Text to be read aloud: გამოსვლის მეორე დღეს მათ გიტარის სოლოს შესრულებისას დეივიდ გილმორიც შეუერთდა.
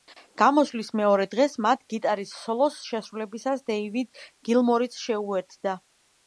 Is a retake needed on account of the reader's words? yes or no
no